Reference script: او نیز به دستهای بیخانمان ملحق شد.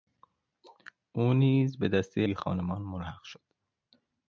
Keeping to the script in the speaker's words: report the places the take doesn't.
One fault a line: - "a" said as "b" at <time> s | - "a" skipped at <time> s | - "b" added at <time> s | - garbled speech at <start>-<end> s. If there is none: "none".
none